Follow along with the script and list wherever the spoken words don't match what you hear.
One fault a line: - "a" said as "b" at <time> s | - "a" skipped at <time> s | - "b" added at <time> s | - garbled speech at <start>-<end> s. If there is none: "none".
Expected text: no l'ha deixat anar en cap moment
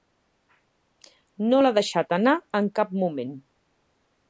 none